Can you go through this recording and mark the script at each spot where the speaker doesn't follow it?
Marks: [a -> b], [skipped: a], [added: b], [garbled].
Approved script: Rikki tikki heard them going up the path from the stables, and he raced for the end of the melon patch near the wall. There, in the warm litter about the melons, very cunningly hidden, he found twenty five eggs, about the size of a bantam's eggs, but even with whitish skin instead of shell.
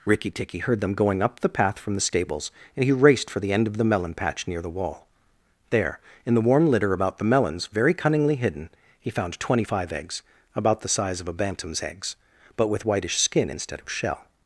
Rikki tikki heard them going up the path from the stables, and he raced for the end of the melon patch near the wall. There, in the warm litter about the melons, very cunningly hidden, he found twenty five eggs, about the size of a bantam's eggs, but [skipped: even] with whitish skin instead of shell.